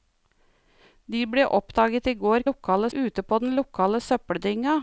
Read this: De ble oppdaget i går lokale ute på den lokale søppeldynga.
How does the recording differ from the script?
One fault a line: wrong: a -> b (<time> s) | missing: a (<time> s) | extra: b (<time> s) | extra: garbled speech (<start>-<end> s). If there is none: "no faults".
no faults